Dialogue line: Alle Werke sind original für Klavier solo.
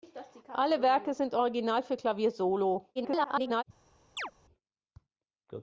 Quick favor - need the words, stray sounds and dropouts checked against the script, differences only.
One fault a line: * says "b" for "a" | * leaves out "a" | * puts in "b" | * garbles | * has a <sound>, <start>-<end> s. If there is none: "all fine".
* garbles
* has a chirp, 4.2-4.3 s